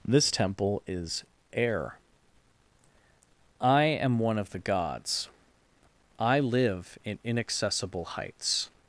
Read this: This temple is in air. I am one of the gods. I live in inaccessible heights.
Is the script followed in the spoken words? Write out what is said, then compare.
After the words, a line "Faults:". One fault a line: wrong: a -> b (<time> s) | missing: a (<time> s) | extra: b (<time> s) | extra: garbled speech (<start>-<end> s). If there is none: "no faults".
This temple is air. I am one of the gods. I live in inaccessible heights.
Faults:
missing: in (1.2 s)